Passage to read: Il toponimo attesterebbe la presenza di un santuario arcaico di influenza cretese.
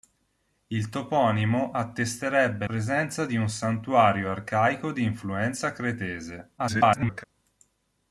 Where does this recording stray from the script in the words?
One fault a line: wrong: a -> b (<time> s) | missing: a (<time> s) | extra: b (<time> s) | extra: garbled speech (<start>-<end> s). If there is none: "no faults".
missing: la (2.6 s)
extra: garbled speech (6.6-7.2 s)